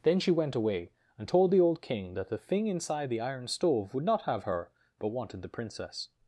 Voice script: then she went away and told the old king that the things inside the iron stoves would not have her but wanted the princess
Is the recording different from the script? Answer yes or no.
yes